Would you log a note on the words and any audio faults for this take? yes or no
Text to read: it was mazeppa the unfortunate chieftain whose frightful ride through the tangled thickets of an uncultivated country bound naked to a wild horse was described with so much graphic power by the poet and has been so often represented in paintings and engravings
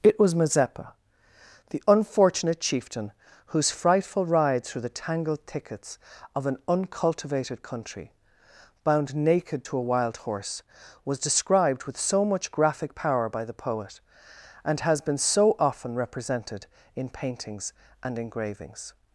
no